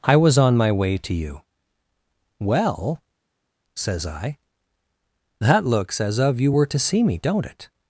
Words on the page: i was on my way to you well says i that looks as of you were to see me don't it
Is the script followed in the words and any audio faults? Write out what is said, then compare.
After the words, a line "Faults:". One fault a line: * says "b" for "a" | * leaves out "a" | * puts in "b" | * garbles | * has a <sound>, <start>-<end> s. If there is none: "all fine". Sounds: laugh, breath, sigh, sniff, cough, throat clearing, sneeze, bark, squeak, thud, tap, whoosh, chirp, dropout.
i was on my way to you well says i that looks as of you were to see me don't it
Faults:
all fine